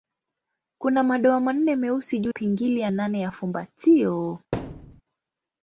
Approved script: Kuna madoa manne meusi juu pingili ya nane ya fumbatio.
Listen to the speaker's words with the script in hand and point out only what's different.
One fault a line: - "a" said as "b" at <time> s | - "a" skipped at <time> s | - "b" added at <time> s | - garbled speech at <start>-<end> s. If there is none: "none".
none